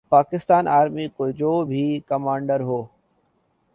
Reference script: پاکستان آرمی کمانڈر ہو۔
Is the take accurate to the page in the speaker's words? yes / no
no